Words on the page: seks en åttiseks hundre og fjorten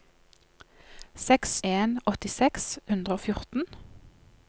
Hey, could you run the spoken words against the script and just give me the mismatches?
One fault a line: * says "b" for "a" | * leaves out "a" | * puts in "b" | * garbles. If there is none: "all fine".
all fine